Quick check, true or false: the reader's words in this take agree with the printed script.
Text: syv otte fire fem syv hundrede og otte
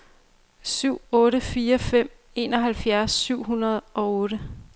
false